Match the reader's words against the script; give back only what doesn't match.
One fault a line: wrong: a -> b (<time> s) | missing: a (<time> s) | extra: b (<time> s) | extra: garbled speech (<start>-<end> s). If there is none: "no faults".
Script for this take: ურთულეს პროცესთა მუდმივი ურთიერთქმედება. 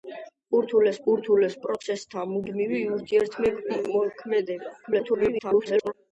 extra: ურთულეს (1.1 s)
extra: garbled speech (4.8-5.9 s)